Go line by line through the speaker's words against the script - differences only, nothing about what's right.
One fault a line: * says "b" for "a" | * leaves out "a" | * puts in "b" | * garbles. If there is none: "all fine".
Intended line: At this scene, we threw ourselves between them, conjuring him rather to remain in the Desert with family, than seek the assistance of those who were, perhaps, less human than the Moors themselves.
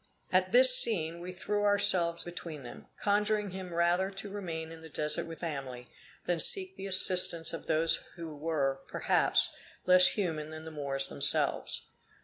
all fine